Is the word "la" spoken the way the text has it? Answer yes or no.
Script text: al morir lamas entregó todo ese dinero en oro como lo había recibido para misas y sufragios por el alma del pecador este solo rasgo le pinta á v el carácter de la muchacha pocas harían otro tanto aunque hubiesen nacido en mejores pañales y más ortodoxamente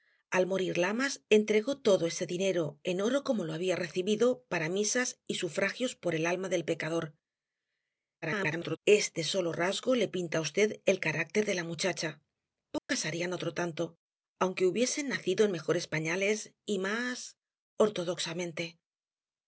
yes